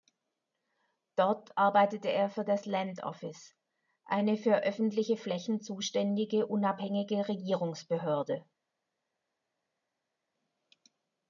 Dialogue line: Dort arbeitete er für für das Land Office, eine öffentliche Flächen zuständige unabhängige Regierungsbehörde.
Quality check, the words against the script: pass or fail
fail